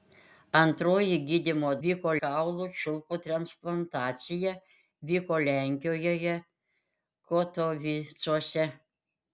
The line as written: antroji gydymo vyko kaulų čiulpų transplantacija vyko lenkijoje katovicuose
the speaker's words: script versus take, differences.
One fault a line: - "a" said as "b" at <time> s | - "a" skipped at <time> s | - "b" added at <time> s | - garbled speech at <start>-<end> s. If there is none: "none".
none